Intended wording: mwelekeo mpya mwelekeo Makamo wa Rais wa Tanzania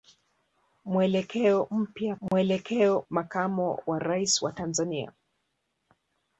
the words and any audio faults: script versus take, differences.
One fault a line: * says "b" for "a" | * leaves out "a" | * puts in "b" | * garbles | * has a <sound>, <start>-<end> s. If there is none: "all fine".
* has a dropout, 2.3-2.3 s